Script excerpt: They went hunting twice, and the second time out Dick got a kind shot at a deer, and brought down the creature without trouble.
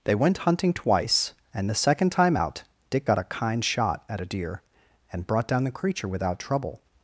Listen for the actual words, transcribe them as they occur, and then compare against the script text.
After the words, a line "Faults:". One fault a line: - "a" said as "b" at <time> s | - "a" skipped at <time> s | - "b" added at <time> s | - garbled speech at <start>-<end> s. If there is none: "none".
They went hunting twice, and the second time out Dick got a kind shot at a deer, and brought down the creature without trouble.
Faults:
none